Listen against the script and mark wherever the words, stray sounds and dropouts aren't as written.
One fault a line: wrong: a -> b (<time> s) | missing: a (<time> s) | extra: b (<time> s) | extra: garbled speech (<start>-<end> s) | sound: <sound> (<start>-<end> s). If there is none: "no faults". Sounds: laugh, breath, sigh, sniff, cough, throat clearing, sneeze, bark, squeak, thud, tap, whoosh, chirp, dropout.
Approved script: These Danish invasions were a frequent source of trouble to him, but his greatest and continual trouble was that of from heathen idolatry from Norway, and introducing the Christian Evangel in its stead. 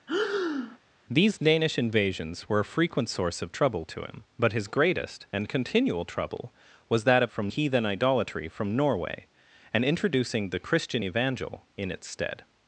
sound: breath (0.1-0.8 s)